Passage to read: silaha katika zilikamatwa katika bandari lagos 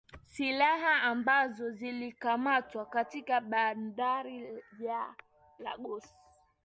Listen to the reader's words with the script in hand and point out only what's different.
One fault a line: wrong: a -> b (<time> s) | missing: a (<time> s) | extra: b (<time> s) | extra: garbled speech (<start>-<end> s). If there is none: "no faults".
wrong: katika -> ambazo (1.0 s)
extra: ya (4.8 s)